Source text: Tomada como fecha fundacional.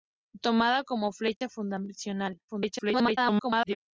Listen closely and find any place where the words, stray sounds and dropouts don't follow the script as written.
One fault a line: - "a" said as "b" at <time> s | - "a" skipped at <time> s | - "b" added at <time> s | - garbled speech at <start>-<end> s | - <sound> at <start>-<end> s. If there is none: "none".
- dropout at 1.4-1.4 s
- garbled speech at 2.5-3.8 s